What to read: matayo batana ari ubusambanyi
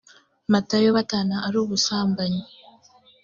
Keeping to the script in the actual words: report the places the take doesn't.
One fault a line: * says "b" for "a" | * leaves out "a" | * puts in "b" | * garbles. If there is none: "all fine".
all fine